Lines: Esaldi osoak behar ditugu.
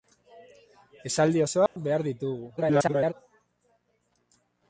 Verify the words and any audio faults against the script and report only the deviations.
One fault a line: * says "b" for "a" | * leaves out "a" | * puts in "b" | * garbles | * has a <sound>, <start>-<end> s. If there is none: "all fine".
* has a dropout, 1.7-1.8 s
* garbles